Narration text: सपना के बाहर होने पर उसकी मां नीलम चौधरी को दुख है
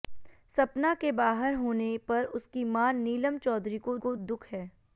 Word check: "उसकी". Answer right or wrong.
right